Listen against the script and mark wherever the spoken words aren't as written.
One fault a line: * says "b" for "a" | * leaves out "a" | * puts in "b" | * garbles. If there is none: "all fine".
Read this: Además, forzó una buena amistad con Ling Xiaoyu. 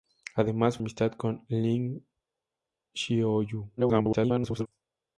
* leaves out "forzó una buena"
* garbles